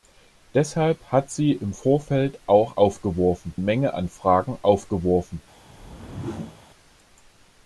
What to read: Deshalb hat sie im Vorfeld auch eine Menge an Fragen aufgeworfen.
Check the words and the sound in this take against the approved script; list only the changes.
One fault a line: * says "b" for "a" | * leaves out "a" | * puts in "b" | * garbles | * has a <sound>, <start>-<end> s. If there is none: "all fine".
* says "aufgeworfen" for "eine"
* has a whoosh, 5.7-6.6 s